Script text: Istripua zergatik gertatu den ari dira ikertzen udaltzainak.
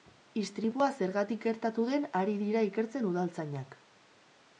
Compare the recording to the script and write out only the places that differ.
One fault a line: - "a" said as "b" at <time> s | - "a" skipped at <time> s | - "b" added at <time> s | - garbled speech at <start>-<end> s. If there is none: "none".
none